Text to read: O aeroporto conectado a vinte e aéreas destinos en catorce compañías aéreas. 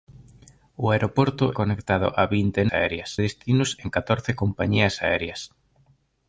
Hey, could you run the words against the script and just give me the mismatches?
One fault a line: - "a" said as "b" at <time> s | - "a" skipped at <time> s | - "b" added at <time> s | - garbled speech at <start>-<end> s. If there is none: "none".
none